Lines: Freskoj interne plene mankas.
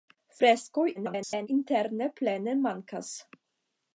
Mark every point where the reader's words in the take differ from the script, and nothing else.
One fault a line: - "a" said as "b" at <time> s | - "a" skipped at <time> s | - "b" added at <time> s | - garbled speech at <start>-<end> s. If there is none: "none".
- garbled speech at 0.9-1.5 s